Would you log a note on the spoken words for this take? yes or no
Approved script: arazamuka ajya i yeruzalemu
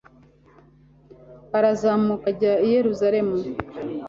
no